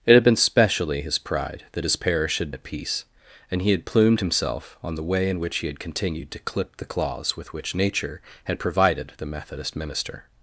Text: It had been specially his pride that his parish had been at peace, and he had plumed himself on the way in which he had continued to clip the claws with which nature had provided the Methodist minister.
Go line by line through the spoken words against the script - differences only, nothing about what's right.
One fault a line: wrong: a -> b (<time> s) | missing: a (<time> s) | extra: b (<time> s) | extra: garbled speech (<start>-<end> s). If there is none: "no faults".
missing: been (2.5 s)